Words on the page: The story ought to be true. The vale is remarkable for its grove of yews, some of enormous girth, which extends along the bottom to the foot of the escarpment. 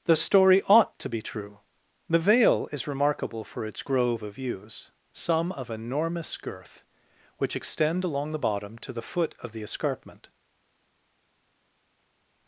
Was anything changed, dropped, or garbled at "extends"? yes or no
yes